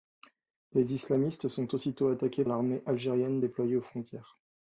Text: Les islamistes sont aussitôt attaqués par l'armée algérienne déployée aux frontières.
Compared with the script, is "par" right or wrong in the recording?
wrong